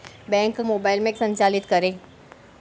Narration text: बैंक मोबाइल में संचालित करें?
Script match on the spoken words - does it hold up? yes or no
yes